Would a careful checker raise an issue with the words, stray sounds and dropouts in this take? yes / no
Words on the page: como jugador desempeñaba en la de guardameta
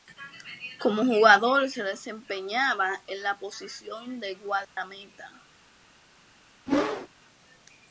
yes